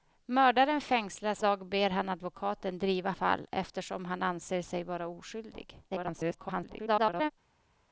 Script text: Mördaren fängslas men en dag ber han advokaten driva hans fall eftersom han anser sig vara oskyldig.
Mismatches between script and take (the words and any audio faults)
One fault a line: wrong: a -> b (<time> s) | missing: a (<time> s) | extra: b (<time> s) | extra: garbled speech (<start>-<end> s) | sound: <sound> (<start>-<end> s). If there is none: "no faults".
missing: men en (1.4 s)
missing: hans (3.1 s)
extra: garbled speech (5.9-7.3 s)